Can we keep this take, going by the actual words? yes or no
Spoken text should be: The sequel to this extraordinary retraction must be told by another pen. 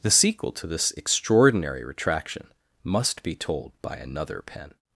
yes